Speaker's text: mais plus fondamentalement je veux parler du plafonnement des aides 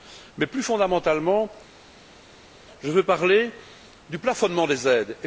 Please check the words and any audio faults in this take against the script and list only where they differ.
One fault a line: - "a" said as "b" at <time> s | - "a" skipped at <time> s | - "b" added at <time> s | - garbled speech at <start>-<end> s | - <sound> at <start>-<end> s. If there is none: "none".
none